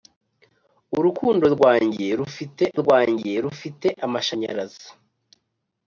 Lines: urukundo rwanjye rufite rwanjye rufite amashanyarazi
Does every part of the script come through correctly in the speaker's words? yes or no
yes